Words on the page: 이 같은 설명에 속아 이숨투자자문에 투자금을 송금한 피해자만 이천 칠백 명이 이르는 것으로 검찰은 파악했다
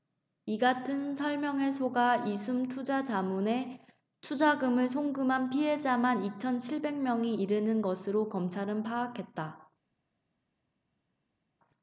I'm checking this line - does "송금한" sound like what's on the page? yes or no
yes